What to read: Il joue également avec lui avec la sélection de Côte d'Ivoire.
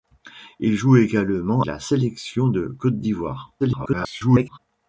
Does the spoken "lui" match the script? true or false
false